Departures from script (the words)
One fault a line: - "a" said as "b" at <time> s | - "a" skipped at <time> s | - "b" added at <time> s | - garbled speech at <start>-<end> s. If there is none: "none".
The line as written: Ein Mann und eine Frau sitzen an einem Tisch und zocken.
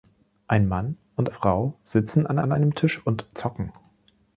- "eine" skipped at 1.3 s
- "an" added at 2.4 s